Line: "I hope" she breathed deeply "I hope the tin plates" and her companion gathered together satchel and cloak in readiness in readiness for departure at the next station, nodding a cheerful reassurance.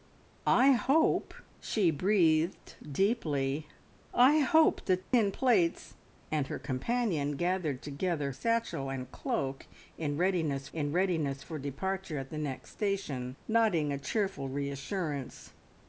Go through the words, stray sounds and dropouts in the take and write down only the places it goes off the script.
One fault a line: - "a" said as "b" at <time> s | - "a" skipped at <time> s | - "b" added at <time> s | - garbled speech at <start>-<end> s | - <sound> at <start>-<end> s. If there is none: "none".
- dropout at 5.0-5.1 s